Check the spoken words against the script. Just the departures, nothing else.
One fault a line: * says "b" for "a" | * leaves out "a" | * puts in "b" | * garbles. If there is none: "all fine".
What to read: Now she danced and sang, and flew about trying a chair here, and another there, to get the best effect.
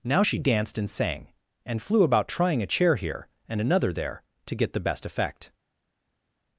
all fine